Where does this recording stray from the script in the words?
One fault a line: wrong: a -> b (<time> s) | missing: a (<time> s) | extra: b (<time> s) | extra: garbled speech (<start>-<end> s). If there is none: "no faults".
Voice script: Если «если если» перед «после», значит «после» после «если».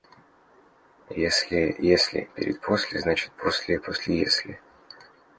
missing: если (2.3 s)